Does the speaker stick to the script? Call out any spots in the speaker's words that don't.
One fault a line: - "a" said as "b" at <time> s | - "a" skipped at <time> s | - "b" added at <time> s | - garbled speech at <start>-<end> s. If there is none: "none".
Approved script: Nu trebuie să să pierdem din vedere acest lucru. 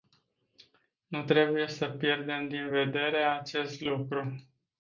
- "să" skipped at 1.9 s